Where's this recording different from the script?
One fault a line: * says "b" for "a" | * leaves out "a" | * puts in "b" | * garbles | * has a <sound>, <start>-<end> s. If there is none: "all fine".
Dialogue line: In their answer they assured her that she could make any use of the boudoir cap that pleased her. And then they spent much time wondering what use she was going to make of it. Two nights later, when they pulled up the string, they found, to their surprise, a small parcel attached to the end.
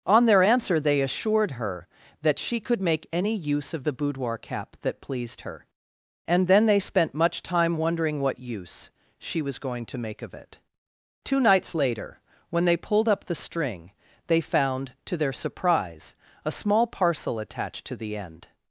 * says "On" for "In"